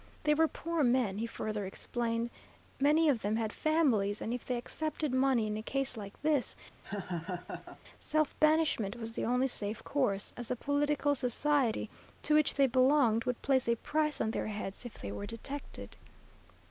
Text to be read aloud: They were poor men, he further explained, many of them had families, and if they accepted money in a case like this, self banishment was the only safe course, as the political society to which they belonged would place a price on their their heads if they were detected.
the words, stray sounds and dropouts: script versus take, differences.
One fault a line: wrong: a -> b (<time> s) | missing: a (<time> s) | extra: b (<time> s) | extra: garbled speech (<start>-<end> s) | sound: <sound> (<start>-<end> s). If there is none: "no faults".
sound: laugh (6.8-7.8 s)
missing: their (14.4 s)